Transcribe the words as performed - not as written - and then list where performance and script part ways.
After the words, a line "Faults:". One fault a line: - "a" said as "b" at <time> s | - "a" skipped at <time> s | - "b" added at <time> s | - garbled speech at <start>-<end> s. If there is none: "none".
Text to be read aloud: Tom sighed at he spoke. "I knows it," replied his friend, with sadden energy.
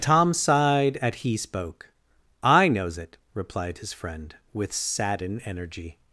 Tom sighed at he spoke. "I knows it," replied his friend, with sadden energy.
Faults:
none